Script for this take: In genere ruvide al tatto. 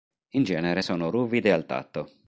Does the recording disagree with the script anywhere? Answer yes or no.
yes